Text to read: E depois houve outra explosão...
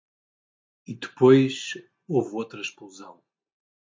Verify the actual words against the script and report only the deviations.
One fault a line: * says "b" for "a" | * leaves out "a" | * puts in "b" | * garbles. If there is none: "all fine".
all fine